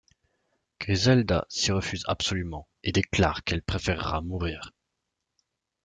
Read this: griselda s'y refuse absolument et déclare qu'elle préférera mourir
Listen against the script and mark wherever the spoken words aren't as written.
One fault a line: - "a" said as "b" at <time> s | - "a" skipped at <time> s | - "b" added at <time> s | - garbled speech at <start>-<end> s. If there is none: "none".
none